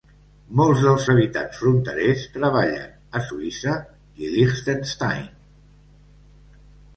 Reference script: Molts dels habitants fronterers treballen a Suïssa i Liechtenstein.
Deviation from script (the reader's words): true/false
false